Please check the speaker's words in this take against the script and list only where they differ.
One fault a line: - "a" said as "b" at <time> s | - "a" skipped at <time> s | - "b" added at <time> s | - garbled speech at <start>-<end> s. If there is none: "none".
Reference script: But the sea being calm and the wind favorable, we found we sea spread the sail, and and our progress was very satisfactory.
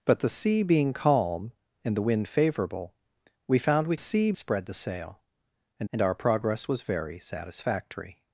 none